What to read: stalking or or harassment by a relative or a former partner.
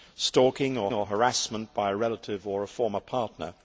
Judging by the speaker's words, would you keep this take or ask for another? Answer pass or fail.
pass